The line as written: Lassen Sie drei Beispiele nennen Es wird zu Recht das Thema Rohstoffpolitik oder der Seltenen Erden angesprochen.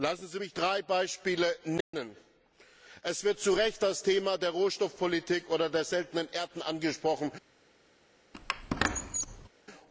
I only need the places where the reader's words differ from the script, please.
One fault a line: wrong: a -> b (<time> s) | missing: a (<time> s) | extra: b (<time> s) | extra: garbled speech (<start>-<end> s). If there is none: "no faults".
extra: mich (0.4 s)
extra: der (4.4 s)